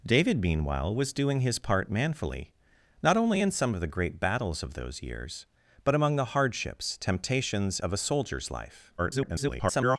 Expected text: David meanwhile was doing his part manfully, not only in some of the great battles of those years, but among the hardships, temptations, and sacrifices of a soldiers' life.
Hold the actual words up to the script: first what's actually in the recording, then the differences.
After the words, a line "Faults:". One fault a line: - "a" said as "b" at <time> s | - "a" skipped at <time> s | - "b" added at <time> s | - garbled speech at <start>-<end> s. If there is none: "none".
David meanwhile was doing his part manfully, not only in some of the great battles of those years, but among the hardships, temptations, of a soldiers' life. [garbled]
Faults:
- "and sacrifices" skipped at 7.8 s
- garbled speech at 9.0-10.0 s